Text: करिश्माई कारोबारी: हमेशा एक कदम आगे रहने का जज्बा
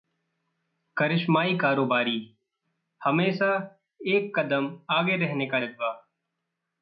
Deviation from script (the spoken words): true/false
false